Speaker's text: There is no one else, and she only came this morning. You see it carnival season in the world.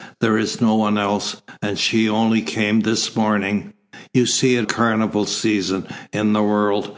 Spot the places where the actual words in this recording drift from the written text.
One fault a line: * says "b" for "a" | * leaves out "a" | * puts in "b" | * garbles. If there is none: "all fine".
all fine